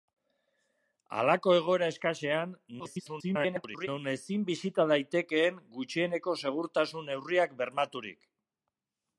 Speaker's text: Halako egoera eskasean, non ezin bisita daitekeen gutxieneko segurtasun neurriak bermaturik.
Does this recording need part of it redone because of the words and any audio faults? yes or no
yes